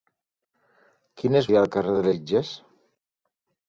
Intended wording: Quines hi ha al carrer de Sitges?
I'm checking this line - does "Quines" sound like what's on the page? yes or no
yes